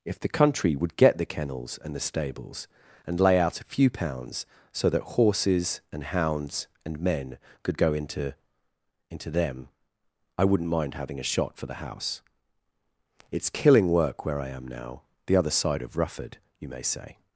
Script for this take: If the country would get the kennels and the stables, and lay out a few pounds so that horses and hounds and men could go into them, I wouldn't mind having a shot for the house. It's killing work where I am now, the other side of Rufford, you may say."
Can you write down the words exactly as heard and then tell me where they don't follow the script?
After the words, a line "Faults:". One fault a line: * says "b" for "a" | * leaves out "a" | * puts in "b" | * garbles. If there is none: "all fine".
If the country would get the kennels and the stables, and lay out a few pounds so that horses and hounds and men could go into into them, I wouldn't mind having a shot for the house. It's killing work where I am now, the other side of Rufford, you may say."
Faults:
* puts in "into"